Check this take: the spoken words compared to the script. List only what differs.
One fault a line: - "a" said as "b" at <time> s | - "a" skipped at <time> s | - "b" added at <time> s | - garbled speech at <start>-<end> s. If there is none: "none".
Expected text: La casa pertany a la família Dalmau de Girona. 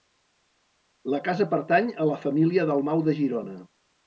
none